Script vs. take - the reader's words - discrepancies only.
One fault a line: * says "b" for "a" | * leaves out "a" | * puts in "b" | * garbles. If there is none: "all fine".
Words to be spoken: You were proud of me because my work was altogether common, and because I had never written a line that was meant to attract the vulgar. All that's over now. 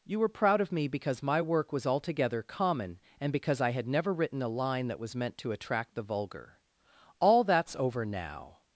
all fine